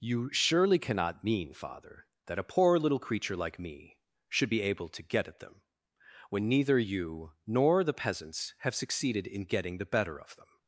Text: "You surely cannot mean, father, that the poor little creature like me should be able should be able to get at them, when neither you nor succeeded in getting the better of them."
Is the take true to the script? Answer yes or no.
no